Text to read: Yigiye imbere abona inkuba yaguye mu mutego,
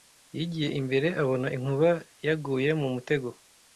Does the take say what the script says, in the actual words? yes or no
yes